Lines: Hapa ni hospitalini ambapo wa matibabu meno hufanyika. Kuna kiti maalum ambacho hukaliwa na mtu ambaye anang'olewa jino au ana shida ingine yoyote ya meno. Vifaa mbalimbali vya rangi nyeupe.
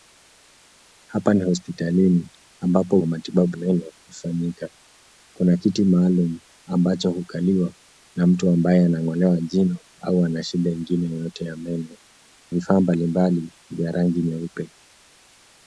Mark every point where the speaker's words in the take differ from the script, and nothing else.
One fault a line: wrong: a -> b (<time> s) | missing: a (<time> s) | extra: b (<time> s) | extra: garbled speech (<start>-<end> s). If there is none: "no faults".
no faults